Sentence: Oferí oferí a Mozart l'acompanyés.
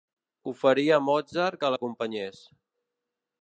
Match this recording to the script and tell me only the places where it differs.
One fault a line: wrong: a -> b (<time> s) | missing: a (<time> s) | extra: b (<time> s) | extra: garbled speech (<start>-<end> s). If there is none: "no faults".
missing: oferí (0.8 s)
extra: que (1.6 s)